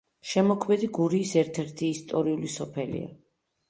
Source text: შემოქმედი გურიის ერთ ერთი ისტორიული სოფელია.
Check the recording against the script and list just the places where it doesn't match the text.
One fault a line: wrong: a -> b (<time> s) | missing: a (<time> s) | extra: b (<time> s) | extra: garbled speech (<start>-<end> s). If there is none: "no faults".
no faults